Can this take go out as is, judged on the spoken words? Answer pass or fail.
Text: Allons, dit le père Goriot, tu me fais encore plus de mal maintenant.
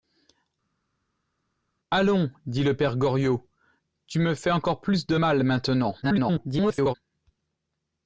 fail